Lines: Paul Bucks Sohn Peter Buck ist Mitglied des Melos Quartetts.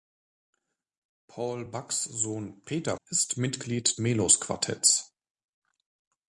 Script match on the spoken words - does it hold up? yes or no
no